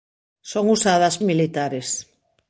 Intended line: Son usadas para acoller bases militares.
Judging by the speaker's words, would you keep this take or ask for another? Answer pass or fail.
fail